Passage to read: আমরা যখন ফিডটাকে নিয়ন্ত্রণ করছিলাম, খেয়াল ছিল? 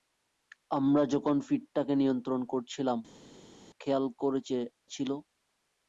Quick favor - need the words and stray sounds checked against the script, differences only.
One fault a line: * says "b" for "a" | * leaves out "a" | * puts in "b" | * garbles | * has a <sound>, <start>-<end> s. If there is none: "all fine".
all fine